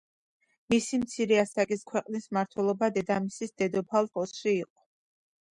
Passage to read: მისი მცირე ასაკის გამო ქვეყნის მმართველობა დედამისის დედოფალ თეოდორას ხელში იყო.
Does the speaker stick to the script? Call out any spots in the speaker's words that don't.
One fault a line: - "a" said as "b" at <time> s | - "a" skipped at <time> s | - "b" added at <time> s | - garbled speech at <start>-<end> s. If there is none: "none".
- "გამო" skipped at 1.9 s
- "თეოდორას" skipped at 4.1 s